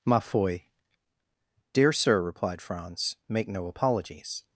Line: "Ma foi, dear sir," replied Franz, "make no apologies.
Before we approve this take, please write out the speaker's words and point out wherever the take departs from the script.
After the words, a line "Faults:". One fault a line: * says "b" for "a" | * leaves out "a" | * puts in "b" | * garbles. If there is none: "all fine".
"Ma foi, dear sir," replied Franz, "make no apologies.
Faults:
all fine